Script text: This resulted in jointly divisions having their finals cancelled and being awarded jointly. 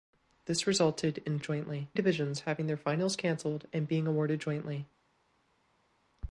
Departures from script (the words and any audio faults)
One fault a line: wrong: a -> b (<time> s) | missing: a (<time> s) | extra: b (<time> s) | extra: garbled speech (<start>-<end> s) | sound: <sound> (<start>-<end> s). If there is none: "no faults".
no faults